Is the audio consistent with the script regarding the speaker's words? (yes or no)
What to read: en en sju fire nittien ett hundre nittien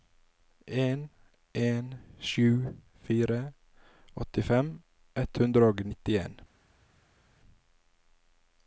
no